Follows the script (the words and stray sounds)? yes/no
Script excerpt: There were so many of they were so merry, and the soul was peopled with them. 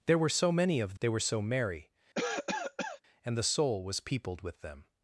no